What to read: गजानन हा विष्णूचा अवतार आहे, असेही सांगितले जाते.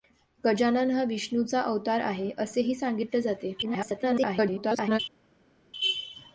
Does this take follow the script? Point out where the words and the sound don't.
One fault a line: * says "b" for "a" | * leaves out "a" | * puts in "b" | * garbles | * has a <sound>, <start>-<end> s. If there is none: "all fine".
* garbles